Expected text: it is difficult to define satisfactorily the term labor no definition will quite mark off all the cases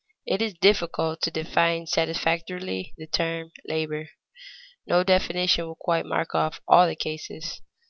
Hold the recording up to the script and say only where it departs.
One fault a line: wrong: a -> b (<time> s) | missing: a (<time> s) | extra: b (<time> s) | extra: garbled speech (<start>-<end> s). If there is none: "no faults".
no faults